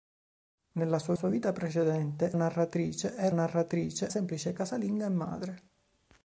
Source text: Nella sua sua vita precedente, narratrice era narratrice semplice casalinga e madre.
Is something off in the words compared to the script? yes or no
no